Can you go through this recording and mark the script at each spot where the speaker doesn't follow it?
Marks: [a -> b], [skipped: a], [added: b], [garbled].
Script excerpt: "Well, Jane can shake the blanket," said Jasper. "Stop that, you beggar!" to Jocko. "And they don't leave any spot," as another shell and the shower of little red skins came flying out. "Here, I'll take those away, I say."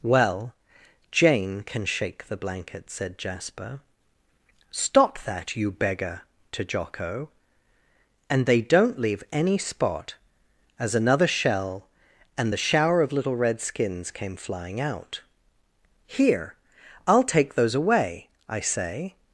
"Well, Jane can shake the blanket," said Jasper. "Stop that, you beggar!" to Jocko. "And they don't leave any spot," as another shell and the shower of little red skins came flying out. "Here, I'll take those away, I say."